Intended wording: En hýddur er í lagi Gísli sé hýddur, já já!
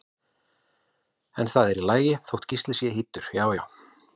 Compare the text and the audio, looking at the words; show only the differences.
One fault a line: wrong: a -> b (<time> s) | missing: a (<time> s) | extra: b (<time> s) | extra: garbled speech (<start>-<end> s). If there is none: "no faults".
wrong: hýddur -> það (1.5 s)
extra: þótt (2.3 s)